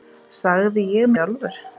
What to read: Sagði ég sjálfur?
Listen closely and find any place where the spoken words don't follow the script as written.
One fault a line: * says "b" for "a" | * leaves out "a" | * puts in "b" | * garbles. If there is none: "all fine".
all fine